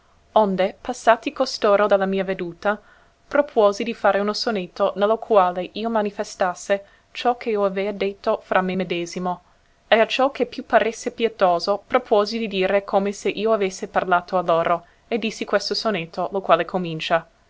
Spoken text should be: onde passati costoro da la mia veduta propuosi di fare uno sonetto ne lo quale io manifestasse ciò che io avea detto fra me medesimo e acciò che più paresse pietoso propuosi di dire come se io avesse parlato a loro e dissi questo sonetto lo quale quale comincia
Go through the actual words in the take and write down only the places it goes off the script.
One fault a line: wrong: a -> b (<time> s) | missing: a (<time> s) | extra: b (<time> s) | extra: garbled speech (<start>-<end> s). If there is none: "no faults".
missing: quale (16.7 s)